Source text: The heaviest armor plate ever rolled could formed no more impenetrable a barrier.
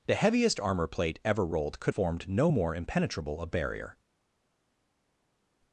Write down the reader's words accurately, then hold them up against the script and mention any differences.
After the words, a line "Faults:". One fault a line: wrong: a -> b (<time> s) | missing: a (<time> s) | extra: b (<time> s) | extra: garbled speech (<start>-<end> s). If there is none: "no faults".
The heaviest armor plate ever rolled could formed no more impenetrable a barrier.
Faults:
no faults